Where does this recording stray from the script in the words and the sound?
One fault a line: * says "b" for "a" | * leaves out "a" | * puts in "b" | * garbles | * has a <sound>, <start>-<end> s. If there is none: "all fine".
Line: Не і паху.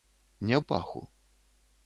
all fine